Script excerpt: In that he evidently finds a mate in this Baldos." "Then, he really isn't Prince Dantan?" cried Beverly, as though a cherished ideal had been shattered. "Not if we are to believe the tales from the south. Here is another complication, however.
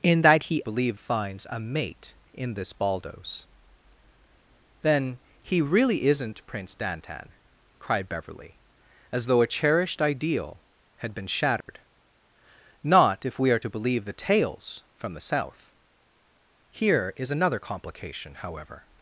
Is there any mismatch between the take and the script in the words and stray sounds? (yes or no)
yes